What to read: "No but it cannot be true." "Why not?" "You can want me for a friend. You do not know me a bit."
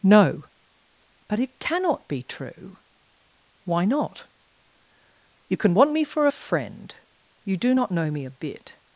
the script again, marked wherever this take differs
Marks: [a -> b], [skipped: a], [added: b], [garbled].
"No but it cannot be true." "Why not?" "You can want me for a friend. You do not know me a bit."